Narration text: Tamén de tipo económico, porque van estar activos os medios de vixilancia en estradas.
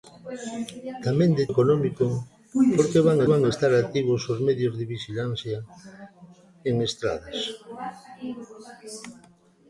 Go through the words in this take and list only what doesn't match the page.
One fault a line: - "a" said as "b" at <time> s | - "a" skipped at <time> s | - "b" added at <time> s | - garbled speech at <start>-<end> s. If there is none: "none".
- "tipo" skipped at 1.4 s
- "van" added at 3.3 s